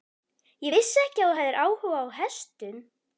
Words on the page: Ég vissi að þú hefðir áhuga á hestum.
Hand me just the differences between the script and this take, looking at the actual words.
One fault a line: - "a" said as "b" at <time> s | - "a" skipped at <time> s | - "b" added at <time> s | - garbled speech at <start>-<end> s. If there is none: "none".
- "ekki" added at 1.0 s